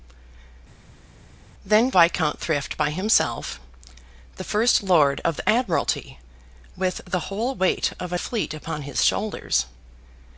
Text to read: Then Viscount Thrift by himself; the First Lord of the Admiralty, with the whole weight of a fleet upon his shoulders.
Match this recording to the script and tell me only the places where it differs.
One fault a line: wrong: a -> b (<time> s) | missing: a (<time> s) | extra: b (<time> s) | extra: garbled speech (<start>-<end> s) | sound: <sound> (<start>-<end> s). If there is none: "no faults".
no faults